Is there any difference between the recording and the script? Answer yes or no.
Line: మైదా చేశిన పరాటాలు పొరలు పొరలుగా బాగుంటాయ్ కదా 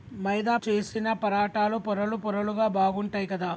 no